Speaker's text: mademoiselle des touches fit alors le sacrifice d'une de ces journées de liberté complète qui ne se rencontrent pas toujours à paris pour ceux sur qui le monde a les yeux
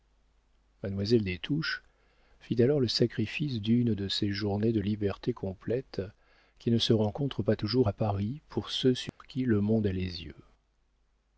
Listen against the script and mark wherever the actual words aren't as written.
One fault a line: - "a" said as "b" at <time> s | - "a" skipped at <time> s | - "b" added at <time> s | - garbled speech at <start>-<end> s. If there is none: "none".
none